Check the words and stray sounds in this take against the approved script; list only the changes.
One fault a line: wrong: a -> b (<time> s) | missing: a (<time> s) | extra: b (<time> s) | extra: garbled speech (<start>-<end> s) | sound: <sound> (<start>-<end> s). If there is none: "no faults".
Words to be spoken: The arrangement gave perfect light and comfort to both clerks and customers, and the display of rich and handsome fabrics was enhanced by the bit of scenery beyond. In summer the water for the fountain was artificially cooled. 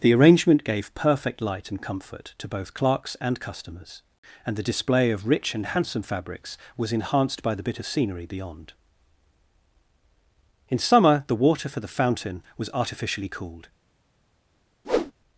sound: whoosh (14.8-15.1 s)